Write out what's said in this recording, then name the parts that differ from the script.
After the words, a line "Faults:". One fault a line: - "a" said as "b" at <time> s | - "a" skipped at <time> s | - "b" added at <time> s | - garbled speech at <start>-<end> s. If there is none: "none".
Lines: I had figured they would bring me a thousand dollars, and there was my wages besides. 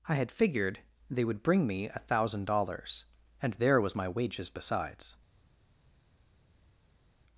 I had figured they would bring me a thousand dollars, and there was my wages besides.
Faults:
none